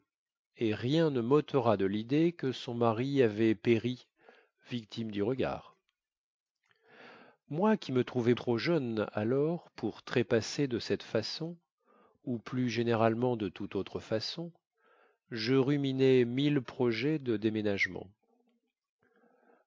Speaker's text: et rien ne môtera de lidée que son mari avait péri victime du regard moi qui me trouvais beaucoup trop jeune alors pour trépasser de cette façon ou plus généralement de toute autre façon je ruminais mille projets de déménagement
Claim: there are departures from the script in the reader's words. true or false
true